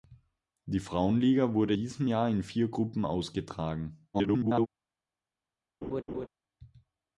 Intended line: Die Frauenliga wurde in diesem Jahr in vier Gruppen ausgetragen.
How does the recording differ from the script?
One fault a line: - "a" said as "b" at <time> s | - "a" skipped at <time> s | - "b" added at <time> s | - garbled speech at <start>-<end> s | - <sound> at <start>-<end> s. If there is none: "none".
- "in" skipped at 1.8 s
- garbled speech at 4.1-4.7 s
- laugh at 5.8-6.3 s